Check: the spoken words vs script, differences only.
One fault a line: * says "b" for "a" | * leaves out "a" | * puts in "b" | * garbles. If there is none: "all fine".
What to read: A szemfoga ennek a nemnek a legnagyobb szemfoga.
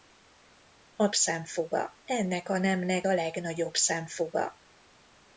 all fine